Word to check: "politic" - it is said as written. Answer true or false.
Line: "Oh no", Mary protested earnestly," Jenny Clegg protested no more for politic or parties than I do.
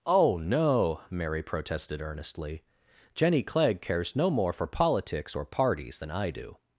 false